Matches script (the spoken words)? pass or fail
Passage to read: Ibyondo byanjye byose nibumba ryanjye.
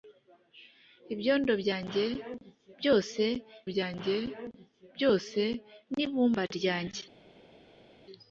fail